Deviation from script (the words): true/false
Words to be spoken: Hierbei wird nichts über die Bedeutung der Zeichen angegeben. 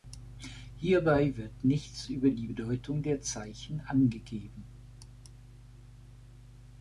false